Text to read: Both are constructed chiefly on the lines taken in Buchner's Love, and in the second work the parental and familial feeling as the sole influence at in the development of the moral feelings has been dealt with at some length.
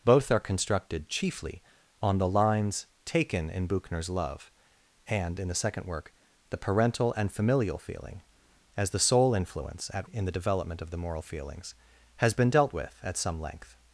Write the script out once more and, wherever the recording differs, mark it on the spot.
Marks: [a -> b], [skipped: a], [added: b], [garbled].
Both are constructed chiefly on the lines taken in Buchner's Love, and in the second work the parental and familial feeling as the sole influence at in the development of the moral feelings has been dealt with at some length.